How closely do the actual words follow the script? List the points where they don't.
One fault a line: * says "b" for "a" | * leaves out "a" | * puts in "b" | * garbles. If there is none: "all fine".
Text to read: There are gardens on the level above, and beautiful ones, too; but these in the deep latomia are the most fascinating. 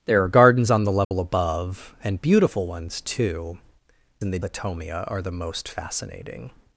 * leaves out "but these"
* leaves out "deep"